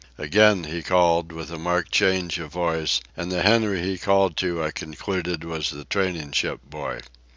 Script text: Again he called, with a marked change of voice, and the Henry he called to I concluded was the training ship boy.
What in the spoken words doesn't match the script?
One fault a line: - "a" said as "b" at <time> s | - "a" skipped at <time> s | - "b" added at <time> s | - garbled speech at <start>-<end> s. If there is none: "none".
none